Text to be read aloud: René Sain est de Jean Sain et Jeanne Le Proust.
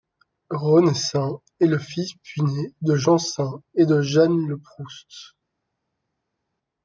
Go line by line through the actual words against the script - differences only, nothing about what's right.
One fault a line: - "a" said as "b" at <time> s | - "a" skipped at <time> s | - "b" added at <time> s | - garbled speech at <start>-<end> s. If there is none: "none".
- "le fils puîné" added at 1.7 s
- "de" added at 3.8 s